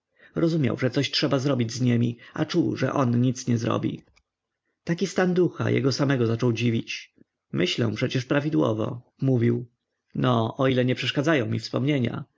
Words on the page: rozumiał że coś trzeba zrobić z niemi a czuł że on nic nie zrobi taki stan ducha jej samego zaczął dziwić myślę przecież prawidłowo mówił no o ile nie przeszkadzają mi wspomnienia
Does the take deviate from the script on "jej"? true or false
true